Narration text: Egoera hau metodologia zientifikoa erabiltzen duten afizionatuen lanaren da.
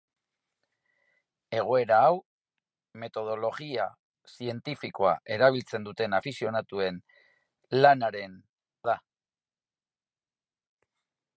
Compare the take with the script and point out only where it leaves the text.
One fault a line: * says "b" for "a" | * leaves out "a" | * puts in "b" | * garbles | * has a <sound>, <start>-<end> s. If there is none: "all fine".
all fine